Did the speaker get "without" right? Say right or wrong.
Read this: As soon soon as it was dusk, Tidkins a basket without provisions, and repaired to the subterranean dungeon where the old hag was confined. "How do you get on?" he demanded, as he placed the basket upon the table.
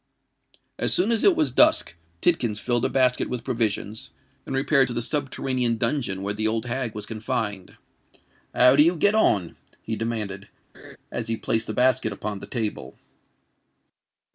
wrong